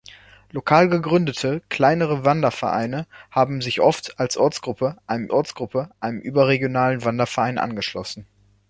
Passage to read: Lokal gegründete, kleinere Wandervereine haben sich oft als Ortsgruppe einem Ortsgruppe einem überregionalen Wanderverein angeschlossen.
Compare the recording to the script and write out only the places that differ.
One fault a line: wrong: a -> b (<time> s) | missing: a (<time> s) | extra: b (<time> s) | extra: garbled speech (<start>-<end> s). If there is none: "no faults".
no faults